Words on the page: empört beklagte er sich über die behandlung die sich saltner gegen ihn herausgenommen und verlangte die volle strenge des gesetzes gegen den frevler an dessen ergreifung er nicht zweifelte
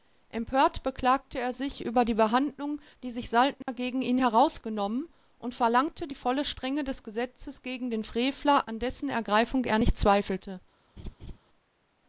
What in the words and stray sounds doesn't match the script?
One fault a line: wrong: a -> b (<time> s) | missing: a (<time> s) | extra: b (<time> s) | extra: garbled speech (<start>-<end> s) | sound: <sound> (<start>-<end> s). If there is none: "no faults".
sound: dropout (3.6-3.7 s)
sound: laugh (11.0-11.4 s)